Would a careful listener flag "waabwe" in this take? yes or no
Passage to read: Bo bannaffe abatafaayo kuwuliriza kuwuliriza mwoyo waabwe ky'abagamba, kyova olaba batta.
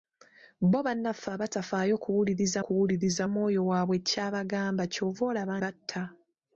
no